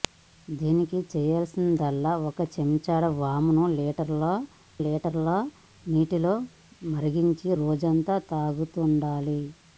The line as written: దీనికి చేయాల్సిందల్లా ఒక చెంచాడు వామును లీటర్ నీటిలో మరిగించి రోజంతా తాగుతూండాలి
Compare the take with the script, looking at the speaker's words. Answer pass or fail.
fail